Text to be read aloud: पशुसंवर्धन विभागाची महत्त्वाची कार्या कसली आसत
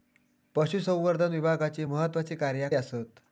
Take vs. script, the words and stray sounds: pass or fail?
fail